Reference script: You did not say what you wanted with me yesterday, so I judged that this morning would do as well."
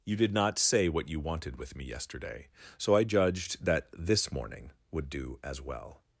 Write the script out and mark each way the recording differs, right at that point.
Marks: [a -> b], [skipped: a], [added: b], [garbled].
You did not say what you wanted with me yesterday, so I judged that this morning would do as well."